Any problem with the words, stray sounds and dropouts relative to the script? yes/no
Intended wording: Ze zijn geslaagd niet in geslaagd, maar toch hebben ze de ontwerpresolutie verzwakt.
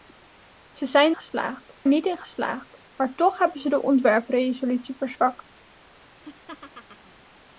yes